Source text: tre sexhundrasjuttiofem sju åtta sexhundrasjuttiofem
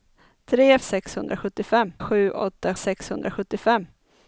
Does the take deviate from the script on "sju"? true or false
false